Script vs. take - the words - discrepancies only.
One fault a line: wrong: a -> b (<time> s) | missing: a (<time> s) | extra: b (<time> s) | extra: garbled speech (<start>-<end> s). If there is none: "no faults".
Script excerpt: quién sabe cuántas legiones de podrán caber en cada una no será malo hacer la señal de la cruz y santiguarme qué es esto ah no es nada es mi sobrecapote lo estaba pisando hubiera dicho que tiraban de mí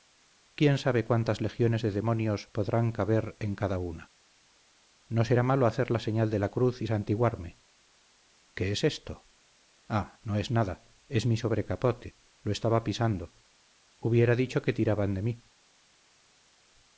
extra: demonios (1.9 s)